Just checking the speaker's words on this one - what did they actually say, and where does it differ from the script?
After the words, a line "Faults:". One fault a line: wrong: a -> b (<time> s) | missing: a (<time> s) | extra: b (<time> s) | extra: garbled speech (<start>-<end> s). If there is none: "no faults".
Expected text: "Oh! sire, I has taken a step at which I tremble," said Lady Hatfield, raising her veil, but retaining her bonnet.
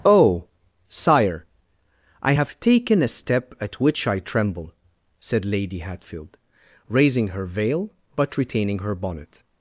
"Oh! sire, I have taken a step at which I tremble," said Lady Hatfield, raising her veil, but retaining her bonnet.
Faults:
wrong: has -> have (2.3 s)